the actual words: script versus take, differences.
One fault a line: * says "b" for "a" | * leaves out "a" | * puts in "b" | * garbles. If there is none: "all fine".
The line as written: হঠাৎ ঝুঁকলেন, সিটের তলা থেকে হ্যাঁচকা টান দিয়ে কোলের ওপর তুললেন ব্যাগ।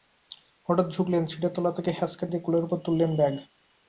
* leaves out "টান"